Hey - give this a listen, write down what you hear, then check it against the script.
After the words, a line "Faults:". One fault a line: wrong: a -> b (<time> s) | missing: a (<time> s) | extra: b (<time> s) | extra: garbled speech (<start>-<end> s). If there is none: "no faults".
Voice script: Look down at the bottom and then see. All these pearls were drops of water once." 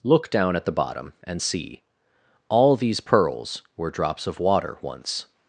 Look down at the bottom and see. All these pearls were drops of water once."
Faults:
missing: then (1.4 s)